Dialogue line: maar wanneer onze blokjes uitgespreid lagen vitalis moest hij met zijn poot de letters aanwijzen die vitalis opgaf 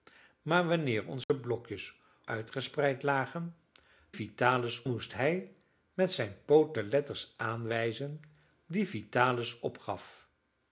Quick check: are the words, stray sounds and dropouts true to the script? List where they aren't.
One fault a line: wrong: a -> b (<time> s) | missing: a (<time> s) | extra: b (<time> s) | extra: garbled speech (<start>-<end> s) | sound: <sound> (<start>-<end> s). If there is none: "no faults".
sound: dropout (1.2-1.3 s)